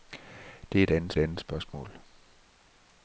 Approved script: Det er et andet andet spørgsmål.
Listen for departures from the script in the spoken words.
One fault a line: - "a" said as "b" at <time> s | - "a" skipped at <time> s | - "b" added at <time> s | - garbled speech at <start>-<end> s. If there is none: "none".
none